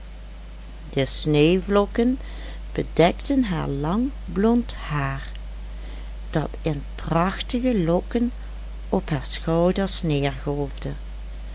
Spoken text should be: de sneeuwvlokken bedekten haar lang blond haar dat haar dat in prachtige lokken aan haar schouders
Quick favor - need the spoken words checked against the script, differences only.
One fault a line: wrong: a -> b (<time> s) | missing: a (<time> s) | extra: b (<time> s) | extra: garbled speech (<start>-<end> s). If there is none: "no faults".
missing: haar dat (6.5 s)
wrong: aan -> op (8.9 s)